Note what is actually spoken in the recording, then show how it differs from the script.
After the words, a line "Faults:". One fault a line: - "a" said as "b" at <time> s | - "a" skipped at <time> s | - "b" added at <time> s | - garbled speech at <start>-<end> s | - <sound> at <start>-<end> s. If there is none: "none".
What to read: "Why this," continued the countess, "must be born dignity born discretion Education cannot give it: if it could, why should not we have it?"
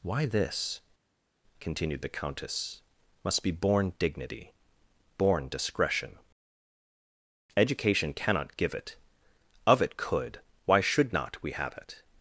"Why this," continued the countess, "must be born dignity born discretion Education cannot give it: of it could, why should not we have it?"
Faults:
- "if" said as "of" at 9.7 s